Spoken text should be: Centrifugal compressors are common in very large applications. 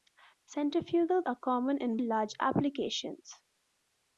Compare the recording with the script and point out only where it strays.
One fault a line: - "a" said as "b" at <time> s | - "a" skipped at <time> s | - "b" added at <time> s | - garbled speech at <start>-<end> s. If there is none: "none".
- "compressors" skipped at 1.2 s
- "very" skipped at 2.0 s